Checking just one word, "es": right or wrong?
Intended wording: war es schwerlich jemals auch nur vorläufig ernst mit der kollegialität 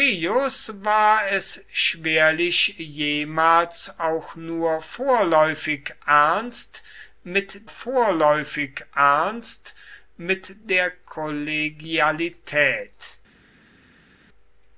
right